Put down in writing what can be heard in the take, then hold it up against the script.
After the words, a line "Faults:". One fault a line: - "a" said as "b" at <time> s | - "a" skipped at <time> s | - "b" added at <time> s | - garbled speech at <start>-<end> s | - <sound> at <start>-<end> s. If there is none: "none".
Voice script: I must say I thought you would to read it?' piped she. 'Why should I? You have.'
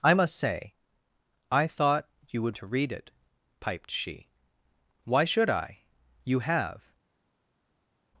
I must say I thought you would to read it?' piped she. 'Why should I? You have.'
Faults:
none